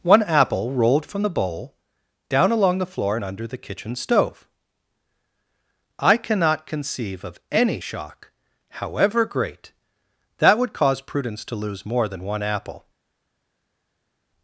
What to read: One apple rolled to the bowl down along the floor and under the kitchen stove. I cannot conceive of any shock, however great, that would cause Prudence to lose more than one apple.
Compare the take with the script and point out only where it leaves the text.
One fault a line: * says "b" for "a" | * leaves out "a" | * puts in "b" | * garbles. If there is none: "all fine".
* says "from" for "to"